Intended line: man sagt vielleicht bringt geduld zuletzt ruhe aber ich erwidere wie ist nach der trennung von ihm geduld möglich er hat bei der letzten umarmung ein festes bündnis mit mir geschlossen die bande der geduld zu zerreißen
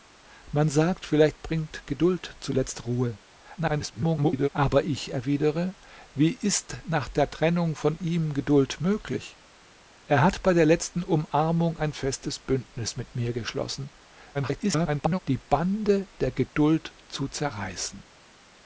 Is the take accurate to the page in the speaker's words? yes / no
no